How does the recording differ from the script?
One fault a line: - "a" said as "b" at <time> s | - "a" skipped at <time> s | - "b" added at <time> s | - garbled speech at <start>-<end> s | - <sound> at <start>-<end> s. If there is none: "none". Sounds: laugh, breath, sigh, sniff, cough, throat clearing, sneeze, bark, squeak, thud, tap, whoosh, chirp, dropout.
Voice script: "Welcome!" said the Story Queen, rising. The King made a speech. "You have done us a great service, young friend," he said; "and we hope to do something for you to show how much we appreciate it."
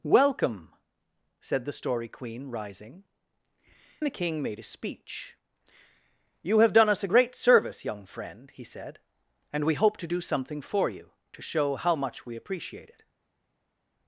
none